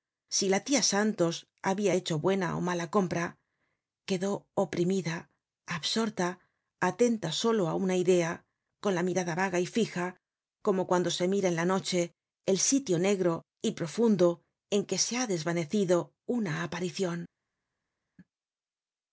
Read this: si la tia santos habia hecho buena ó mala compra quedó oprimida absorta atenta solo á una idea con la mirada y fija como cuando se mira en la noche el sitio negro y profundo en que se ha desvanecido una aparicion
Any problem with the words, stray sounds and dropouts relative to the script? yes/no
yes